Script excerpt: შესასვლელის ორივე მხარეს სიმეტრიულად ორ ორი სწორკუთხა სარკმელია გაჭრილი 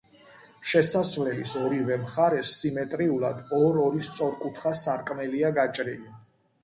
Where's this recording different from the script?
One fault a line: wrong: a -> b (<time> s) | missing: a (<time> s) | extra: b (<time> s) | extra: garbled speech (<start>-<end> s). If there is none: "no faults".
no faults